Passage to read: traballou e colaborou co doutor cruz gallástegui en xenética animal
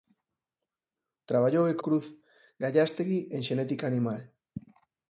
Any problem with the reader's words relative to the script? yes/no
yes